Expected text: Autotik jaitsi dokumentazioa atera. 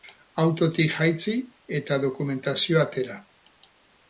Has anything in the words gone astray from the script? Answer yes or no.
yes